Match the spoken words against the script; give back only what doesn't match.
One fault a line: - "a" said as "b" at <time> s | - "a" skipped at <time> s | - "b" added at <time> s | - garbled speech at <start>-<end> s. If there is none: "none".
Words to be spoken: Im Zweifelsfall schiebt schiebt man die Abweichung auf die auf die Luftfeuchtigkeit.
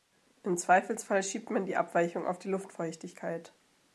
- "schiebt" skipped at 1.5 s
- "auf die" skipped at 2.5 s